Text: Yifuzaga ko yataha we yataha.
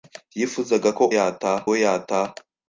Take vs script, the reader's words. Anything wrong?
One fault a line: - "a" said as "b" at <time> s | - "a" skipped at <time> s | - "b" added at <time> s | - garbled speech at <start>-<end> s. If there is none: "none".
none